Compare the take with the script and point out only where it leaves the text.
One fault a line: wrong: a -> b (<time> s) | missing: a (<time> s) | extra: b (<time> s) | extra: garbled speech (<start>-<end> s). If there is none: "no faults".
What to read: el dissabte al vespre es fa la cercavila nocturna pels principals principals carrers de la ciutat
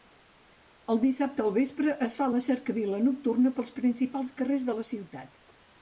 missing: principals (4.4 s)